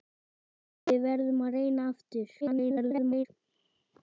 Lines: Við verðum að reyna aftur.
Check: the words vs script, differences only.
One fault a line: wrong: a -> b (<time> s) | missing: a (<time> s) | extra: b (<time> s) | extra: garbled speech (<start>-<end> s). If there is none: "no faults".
extra: garbled speech (2.4-3.3 s)